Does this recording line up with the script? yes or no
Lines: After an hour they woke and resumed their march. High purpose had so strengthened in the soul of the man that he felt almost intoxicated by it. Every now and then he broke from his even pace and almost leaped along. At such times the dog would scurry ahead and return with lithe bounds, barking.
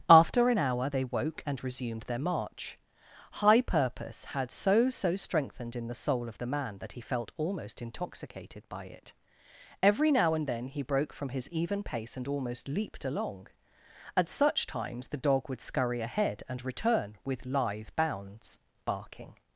no